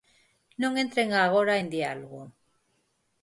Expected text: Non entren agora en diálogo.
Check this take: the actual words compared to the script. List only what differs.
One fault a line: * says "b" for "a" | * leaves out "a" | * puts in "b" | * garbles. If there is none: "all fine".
all fine